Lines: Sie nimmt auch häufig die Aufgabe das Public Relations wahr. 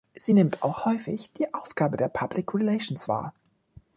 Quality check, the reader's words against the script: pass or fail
fail